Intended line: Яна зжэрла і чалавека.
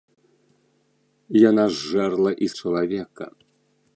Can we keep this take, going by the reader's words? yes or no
yes